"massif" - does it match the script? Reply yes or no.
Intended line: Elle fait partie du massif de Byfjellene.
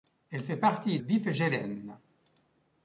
no